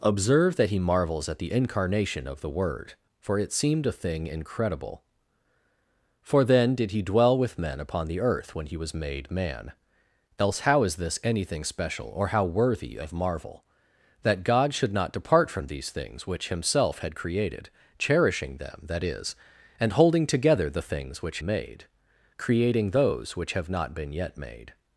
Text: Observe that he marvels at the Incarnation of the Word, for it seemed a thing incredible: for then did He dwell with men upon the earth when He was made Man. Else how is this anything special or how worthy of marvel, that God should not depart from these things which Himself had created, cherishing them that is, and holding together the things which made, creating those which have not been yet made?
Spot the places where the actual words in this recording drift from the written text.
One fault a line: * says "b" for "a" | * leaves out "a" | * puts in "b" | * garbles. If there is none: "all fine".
all fine